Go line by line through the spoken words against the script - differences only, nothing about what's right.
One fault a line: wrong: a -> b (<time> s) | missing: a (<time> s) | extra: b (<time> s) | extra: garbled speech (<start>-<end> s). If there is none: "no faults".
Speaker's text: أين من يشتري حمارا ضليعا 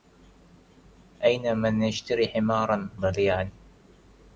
no faults